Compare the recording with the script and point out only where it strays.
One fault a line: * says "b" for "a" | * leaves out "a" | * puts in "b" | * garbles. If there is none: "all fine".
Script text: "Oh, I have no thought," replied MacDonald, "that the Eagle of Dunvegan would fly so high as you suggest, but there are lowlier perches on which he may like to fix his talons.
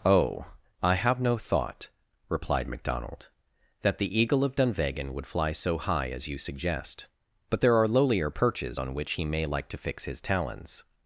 all fine